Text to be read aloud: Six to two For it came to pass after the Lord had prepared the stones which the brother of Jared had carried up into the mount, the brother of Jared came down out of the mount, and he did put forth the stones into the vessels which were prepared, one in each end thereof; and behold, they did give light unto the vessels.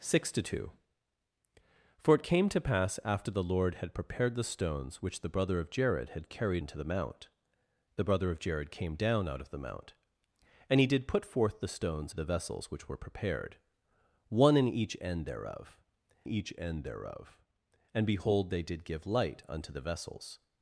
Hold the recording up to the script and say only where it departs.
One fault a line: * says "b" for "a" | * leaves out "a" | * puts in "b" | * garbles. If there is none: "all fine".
* leaves out "up"
* leaves out "into"
* puts in "each end thereof"